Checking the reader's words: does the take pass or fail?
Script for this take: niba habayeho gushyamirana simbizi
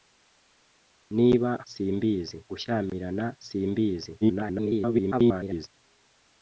fail